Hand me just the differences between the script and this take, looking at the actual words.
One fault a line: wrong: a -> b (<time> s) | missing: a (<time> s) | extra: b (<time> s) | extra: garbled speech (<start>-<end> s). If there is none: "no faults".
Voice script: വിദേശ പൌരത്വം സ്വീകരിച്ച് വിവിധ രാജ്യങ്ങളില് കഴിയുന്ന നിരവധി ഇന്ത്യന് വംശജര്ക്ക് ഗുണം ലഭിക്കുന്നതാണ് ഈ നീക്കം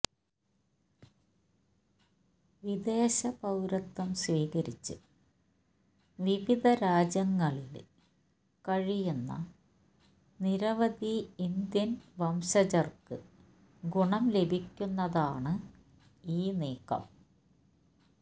no faults